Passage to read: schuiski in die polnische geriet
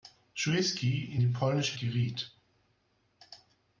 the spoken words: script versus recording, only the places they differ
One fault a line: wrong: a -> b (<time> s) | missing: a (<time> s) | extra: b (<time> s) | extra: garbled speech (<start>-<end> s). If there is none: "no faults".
no faults